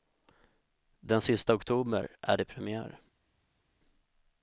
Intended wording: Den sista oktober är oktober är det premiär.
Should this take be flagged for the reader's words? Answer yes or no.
yes